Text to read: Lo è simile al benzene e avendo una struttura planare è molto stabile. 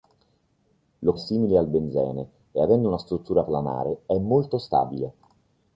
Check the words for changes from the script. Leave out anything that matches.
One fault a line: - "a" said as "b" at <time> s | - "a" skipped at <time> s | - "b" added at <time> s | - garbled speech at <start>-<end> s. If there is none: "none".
none